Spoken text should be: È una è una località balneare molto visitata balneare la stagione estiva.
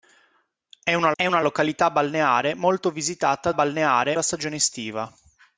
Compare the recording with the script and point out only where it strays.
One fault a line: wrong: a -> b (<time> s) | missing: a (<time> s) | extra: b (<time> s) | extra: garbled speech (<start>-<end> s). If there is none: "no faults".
no faults